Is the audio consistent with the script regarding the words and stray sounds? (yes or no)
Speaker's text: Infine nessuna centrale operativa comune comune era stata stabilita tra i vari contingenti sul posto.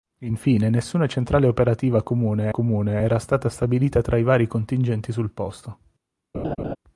no